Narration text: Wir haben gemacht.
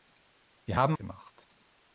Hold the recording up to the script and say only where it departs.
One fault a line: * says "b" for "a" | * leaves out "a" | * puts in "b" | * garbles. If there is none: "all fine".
all fine